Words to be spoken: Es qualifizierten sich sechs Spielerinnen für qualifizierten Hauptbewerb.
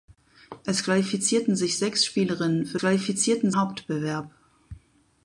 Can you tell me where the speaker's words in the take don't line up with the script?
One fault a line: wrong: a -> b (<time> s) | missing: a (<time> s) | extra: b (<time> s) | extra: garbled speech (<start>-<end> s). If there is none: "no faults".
no faults